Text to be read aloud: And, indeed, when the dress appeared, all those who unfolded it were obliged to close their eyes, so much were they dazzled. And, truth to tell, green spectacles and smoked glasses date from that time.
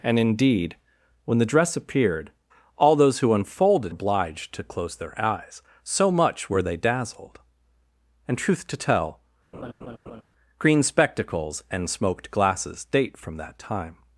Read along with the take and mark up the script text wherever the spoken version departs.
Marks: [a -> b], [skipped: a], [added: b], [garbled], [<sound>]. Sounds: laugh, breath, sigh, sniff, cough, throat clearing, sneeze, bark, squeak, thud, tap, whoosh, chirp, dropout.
And, indeed, when the dress appeared, all those who unfolded [skipped: it were] obliged to close their eyes, so much were they dazzled. And, truth to tell, [laugh] green spectacles and smoked glasses date from that time.